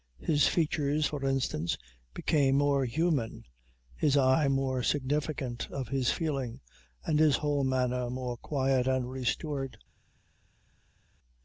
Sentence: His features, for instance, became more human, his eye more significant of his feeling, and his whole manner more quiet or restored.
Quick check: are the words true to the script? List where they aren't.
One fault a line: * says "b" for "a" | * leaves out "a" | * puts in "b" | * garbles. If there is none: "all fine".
* says "and" for "or"